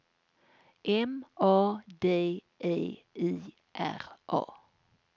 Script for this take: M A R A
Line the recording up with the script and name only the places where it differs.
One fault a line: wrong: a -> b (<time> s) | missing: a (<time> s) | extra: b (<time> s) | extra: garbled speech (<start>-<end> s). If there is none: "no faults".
extra: D E I (2.0 s)